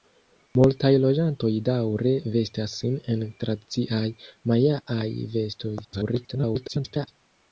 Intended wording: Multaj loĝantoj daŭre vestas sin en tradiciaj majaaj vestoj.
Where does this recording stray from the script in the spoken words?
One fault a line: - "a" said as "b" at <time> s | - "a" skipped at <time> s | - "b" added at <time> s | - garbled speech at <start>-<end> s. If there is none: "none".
- garbled speech at 5.8-7.1 s